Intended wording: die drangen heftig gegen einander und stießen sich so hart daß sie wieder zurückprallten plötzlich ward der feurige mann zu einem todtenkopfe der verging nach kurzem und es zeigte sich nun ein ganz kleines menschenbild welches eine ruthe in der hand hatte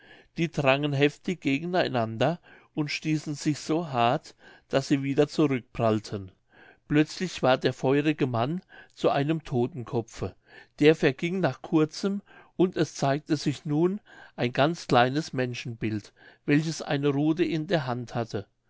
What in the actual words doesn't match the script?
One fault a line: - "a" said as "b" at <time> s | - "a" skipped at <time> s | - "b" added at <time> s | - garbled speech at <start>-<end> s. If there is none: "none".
none